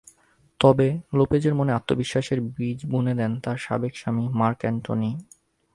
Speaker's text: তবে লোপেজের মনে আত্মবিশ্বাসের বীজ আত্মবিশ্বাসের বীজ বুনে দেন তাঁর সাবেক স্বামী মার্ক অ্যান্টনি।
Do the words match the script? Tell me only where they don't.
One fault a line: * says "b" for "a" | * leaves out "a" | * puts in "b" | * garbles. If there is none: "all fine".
* leaves out "আত্মবিশ্বাসের বীজ"